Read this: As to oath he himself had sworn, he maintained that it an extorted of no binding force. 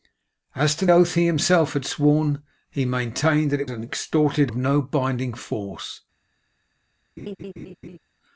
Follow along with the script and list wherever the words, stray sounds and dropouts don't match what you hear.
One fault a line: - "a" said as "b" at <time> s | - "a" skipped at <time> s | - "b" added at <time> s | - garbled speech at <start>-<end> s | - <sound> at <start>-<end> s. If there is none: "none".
- laugh at 7.2-8.0 s